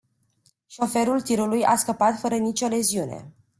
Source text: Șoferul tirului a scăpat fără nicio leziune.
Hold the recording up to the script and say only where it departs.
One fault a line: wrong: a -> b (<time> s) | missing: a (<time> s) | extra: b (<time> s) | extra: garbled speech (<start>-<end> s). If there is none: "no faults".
no faults